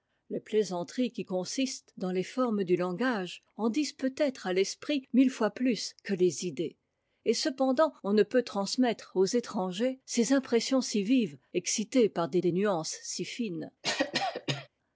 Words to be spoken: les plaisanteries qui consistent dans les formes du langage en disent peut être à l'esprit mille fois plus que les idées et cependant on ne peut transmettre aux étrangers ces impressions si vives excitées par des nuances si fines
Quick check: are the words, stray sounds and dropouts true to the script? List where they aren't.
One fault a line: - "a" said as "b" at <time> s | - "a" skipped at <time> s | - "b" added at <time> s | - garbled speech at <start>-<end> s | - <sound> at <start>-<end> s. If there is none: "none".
- "des" added at 12.4 s
- cough at 13.8-14.7 s